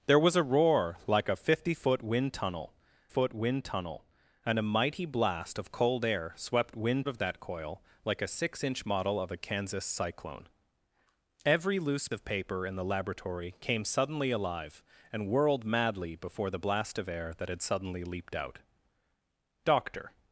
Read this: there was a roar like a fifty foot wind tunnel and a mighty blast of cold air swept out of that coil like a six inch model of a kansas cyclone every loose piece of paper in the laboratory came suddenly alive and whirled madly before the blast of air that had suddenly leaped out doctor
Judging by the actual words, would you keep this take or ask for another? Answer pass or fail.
fail